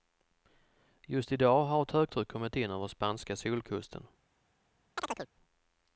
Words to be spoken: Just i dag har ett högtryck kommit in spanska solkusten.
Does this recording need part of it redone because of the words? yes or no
yes